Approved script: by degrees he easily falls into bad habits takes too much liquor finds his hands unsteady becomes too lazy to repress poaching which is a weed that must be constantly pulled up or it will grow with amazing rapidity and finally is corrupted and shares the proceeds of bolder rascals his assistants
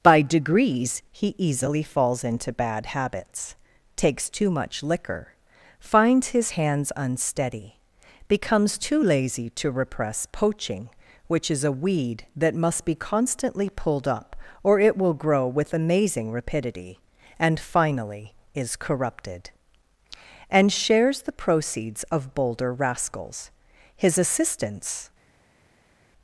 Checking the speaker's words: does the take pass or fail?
pass